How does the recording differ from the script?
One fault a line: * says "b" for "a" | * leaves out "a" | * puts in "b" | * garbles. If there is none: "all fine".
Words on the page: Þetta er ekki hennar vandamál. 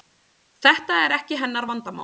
all fine